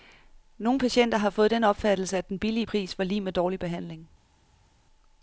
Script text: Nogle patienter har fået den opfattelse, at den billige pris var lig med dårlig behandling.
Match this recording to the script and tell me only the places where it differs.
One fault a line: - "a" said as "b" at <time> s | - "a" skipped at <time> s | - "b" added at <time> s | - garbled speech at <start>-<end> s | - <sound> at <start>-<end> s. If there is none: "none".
none